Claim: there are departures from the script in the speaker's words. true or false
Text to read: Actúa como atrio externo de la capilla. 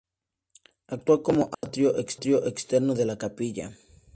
false